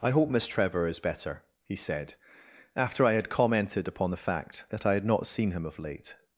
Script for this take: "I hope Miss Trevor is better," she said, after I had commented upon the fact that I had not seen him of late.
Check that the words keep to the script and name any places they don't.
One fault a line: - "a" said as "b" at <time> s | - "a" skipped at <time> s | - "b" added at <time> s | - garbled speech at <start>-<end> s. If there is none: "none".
- "she" said as "he" at 1.6 s